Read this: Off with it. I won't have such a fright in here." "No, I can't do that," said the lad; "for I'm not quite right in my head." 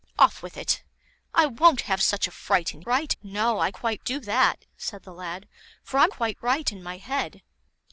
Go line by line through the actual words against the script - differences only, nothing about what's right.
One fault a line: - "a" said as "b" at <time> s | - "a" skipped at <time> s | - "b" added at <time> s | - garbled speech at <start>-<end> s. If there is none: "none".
- "here" said as "right" at 2.8 s
- "can't" said as "quite" at 3.7 s
- "not" skipped at 6.1 s